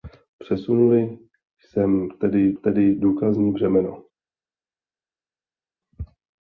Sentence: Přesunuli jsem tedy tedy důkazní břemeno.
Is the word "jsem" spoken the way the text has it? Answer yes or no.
yes